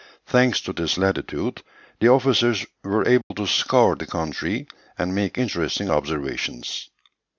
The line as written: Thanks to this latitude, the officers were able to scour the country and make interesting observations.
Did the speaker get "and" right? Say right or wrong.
right